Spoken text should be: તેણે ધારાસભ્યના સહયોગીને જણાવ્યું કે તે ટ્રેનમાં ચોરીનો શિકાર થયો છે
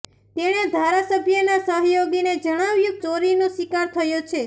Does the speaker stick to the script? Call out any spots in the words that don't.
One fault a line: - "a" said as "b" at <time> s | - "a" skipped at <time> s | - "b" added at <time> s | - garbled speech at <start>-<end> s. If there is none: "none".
- "કે તે ટ્રેનમાં" skipped at 3.0 s